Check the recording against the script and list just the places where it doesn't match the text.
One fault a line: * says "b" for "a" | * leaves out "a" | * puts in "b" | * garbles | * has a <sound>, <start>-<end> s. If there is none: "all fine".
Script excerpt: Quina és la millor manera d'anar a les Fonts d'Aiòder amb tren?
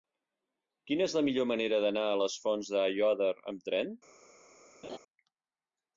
* has a laugh, 4.8-5.0 s